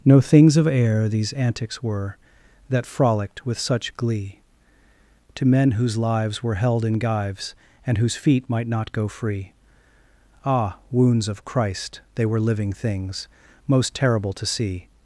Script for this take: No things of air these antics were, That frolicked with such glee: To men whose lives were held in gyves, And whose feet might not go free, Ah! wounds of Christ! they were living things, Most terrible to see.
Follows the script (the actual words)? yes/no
yes